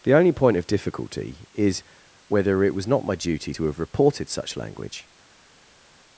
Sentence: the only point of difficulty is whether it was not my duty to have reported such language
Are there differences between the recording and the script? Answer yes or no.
no